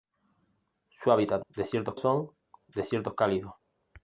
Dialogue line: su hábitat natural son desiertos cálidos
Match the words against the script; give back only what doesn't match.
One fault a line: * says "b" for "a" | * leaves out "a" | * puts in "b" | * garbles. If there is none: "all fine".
* says "desiertos" for "natural"